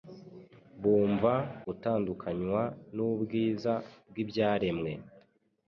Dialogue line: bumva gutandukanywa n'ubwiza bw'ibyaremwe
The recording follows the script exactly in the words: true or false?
true